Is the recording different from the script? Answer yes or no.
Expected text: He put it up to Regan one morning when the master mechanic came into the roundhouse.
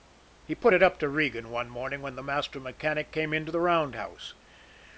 no